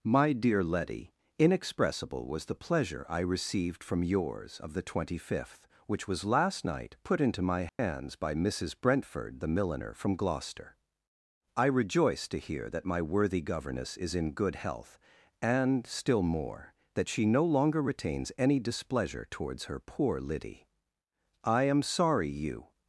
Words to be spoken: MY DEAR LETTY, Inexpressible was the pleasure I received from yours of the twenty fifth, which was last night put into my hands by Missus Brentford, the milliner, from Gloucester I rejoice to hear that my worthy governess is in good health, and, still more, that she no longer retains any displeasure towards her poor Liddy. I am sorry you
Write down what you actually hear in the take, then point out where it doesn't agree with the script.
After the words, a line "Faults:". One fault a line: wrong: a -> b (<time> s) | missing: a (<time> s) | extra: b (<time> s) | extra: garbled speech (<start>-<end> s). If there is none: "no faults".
MY DEAR LETTY, Inexpressible was the pleasure I received from yours of the twenty fifth, which was last night put into my hands by Missus Brentford, the milliner, from Gloucester I rejoice to hear that my worthy governess is in good health, and, still more, that she no longer retains any displeasure towards her poor Liddy. I am sorry you
Faults:
no faults